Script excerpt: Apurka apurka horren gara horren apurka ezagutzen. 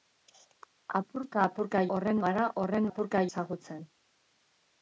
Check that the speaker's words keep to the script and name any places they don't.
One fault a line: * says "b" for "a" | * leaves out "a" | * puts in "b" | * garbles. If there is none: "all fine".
all fine